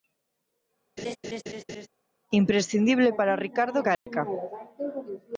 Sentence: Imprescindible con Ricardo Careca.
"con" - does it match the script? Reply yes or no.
no